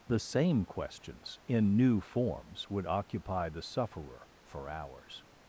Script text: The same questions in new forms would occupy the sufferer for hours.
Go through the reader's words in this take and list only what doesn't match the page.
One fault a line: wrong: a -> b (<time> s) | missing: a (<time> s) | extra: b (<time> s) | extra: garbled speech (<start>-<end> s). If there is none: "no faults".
no faults